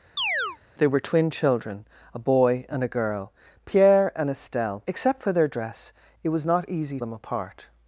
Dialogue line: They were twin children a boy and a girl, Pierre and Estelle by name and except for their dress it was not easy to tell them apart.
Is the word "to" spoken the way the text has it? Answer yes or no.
no